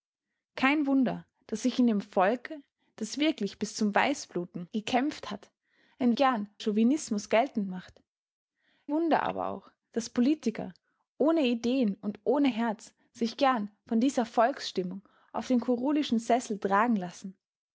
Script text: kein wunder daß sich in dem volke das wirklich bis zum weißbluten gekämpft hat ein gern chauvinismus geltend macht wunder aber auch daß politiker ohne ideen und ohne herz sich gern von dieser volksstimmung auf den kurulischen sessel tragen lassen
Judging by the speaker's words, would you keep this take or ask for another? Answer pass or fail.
pass